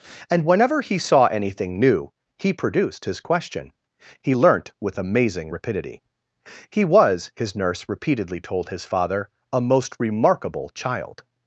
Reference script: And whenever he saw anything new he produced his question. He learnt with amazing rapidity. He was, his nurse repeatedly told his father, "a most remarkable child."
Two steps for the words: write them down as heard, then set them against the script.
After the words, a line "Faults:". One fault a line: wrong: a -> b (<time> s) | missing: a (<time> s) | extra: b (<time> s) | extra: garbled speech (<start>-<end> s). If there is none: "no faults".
And whenever he saw anything new he produced his question. He learnt with amazing rapidity. He was, his nurse repeatedly told his father, "a most remarkable child."
Faults:
no faults